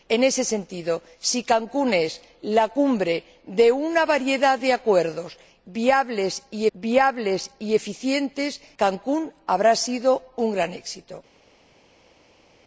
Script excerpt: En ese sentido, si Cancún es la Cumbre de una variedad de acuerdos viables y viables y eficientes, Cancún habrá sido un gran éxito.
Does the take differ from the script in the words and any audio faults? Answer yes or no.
no